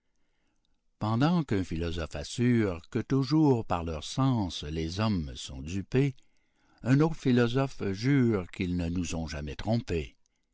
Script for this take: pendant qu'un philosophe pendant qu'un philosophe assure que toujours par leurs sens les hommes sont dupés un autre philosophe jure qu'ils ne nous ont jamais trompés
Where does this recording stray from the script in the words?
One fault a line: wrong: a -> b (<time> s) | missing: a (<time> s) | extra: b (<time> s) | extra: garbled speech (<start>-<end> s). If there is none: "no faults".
missing: pendant qu'un philosophe (2.1 s)